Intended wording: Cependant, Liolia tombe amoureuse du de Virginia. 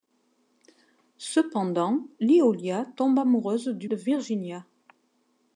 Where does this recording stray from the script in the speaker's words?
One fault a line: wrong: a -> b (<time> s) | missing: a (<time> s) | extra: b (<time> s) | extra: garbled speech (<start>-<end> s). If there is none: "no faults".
no faults